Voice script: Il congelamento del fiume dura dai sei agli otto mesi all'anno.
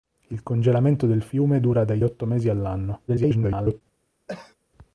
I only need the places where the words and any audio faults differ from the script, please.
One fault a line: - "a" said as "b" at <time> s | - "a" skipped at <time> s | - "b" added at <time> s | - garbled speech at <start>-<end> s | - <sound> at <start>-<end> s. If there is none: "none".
- "sei agli" skipped at 2.0 s
- garbled speech at 3.1-3.8 s
- cough at 4.3-4.5 s